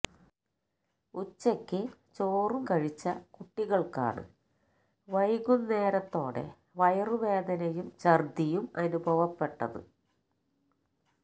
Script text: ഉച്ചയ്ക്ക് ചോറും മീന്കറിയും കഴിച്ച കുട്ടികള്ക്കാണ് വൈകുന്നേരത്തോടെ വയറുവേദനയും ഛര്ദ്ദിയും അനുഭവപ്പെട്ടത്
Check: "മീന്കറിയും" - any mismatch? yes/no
yes